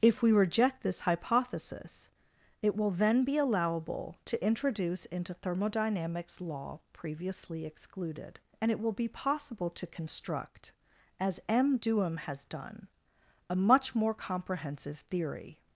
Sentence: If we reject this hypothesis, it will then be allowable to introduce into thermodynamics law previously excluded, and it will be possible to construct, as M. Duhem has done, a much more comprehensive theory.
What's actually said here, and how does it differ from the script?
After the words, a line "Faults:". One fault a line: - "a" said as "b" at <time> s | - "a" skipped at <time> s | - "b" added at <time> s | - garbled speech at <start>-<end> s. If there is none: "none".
If we reject this hypothesis, it will then be allowable to introduce into thermodynamics law previously excluded, and it will be possible to construct, as M. Duhem has done, a much more comprehensive theory.
Faults:
none